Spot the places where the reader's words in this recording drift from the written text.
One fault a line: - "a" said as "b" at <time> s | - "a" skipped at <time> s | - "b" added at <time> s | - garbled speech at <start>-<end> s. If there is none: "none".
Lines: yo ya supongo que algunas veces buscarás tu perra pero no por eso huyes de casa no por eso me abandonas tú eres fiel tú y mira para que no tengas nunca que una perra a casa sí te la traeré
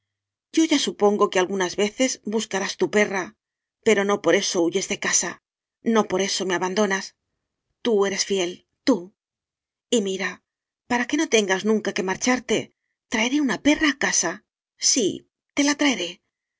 - "marcharte traeré" added at 12.1 s